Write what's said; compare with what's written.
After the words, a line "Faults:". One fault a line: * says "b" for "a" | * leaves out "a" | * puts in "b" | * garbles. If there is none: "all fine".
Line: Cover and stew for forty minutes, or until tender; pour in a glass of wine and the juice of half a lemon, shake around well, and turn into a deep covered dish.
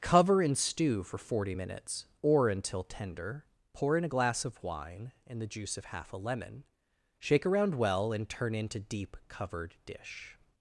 Cover and stew for forty minutes, or until tender; pour in a glass of wine and the juice of half a lemon, shake around well, and turn into deep covered dish.
Faults:
* leaves out "a"